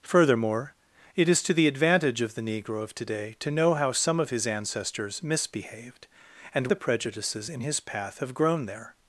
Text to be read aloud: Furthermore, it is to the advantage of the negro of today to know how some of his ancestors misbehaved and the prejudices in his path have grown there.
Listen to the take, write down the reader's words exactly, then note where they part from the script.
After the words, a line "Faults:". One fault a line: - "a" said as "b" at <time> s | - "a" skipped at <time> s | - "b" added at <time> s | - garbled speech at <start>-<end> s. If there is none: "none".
Furthermore, it is to the advantage of the negro of today to know how some of his ancestors misbehaved and the prejudices in his path have grown there.
Faults:
none